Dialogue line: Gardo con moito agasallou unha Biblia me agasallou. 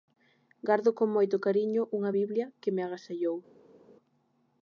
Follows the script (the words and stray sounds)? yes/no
no